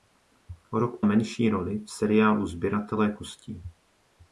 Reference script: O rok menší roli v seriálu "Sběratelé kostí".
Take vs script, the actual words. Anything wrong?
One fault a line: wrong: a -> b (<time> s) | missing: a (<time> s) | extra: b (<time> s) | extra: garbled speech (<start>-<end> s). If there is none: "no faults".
no faults